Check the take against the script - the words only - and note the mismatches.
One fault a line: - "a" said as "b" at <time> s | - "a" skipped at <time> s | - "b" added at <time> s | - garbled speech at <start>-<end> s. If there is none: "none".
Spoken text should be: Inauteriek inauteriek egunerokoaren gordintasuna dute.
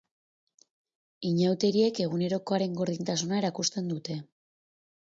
- "inauteriek" skipped at 2.0 s
- "erakusten" added at 3.5 s